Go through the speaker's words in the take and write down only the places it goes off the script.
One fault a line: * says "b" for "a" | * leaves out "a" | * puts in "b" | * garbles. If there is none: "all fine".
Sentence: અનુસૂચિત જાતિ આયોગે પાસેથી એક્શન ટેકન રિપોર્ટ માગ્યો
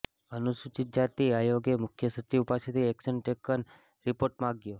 * puts in "મુખ્ય સચિવ"